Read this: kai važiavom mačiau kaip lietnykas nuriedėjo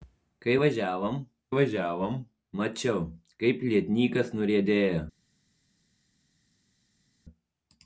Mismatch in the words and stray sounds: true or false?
true